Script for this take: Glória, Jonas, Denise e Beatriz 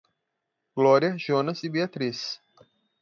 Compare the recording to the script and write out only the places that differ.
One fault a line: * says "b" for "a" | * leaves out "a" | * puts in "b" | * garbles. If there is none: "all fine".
* leaves out "Denise"